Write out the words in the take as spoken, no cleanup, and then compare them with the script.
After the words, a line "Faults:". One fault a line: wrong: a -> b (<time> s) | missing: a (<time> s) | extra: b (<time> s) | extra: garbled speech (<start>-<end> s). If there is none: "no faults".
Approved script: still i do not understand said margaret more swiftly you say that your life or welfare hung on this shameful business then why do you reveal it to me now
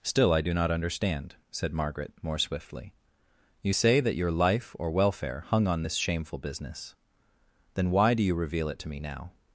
still i do not understand said margaret more swiftly you say that your life or welfare hung on this shameful business then why do you reveal it to me now
Faults:
no faults